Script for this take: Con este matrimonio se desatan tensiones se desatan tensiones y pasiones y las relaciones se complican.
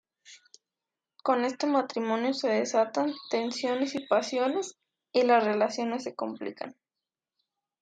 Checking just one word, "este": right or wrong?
right